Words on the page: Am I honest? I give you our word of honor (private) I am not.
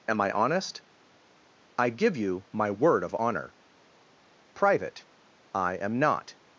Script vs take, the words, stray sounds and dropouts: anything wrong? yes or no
yes